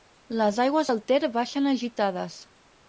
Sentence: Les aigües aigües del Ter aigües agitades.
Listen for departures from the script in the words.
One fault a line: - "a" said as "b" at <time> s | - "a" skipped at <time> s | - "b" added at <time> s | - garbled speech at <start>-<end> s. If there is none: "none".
- "aigües" skipped at 0.9 s
- "aigües" said as "baixen" at 1.4 s